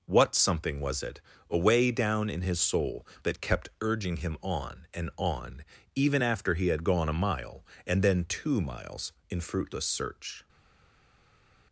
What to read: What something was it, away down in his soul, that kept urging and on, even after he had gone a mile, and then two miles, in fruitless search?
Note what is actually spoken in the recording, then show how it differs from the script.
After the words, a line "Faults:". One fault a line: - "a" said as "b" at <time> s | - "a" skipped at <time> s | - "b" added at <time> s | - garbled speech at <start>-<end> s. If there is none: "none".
What something was it, away down in his soul, that kept urging him on and on, even after he had gone a mile, and then two miles, in fruitless search?
Faults:
- "him on" added at 4.2 s